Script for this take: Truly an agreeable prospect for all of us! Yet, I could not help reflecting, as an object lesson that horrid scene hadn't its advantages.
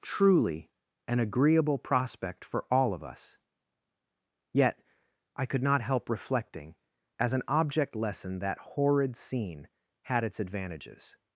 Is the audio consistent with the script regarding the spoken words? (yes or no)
no